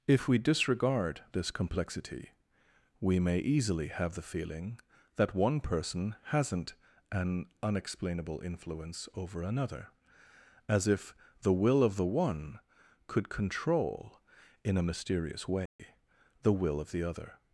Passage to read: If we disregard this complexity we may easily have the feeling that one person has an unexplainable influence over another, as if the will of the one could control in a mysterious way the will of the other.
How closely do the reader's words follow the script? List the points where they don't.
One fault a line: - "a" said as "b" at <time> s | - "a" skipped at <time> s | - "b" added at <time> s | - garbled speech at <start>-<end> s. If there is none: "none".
- "has" said as "hasn't" at 6.2 s